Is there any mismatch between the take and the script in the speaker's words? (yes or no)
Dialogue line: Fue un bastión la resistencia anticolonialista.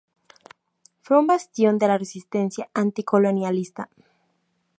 yes